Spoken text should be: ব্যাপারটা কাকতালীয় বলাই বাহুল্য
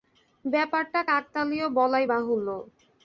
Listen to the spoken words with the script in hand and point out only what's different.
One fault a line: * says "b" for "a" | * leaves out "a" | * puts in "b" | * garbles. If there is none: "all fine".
all fine